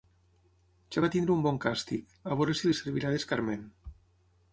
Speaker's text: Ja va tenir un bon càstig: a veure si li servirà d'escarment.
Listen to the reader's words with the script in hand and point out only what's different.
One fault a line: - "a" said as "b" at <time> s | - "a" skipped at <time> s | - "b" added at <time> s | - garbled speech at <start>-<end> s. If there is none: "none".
none